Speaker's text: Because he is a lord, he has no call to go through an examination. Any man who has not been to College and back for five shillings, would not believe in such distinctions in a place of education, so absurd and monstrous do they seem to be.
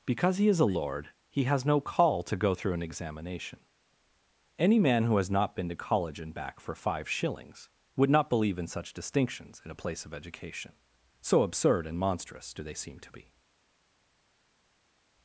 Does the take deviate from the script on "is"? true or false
false